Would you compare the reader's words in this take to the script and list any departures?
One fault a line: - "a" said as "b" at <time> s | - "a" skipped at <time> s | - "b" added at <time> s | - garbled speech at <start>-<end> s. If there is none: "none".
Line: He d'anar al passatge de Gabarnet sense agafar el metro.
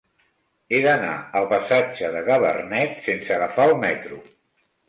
none